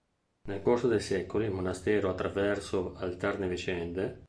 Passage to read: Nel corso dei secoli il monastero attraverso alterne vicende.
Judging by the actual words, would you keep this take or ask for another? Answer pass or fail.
pass